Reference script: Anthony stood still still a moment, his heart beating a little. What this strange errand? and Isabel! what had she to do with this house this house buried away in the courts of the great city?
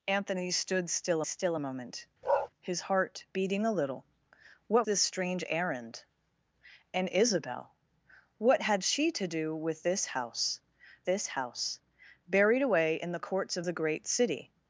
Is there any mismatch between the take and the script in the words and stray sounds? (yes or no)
yes